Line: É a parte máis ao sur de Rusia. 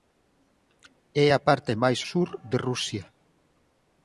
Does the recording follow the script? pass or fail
fail